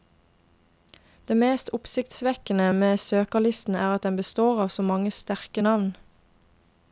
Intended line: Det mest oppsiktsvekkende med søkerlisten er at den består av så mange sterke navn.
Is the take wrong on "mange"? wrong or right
right